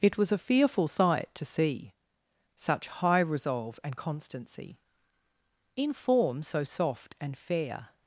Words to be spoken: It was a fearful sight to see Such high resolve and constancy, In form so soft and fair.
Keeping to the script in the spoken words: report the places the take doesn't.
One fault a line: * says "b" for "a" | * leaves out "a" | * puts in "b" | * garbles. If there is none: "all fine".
all fine